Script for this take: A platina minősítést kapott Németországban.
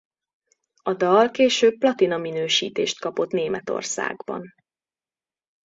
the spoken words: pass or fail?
fail